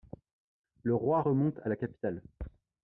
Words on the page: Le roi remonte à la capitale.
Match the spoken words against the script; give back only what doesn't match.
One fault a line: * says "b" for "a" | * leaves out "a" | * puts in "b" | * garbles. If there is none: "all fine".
all fine